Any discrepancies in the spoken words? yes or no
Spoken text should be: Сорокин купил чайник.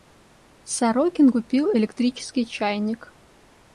yes